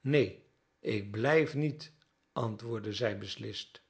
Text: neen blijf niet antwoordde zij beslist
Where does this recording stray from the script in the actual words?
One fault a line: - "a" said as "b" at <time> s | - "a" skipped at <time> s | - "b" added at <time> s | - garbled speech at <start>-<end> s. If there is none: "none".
- "ik" added at 0.8 s